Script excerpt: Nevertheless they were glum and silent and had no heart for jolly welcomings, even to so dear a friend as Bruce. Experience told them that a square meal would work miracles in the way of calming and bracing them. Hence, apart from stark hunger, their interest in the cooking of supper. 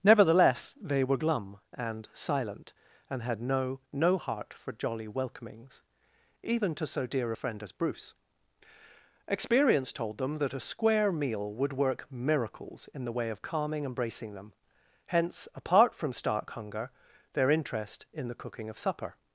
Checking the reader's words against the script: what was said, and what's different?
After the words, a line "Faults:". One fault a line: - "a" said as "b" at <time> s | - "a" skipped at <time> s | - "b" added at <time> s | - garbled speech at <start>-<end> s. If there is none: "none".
Nevertheless they were glum and silent and had no no heart for jolly welcomings, even to so dear a friend as Bruce. Experience told them that a square meal would work miracles in the way of calming and bracing them. Hence, apart from stark hunger, their interest in the cooking of supper.
Faults:
- "no" added at 3.9 s